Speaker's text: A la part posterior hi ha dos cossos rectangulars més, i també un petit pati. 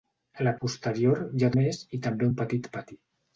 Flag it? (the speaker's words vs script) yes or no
yes